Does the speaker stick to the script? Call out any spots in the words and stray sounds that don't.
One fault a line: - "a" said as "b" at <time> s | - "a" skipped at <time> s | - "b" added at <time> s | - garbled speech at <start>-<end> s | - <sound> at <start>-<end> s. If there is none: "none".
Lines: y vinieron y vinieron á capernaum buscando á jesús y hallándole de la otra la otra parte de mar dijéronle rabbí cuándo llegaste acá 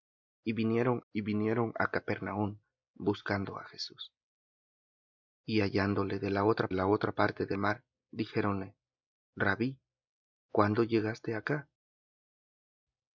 none